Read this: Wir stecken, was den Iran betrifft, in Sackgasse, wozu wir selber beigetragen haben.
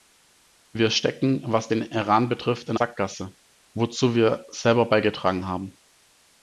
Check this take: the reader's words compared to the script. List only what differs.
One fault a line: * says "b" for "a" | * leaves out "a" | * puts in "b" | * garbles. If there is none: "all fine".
all fine